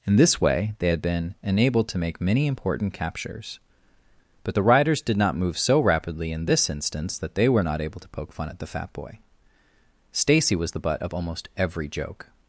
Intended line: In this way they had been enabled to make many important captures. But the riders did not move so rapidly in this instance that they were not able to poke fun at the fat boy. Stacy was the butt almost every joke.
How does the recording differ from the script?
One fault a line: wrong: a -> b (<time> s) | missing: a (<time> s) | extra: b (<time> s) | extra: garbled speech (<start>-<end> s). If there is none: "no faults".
extra: of (11.0 s)